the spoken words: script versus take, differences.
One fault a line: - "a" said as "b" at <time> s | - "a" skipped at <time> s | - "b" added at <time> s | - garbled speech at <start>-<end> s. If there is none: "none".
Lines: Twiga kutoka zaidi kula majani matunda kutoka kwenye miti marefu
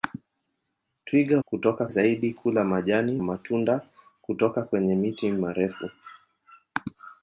none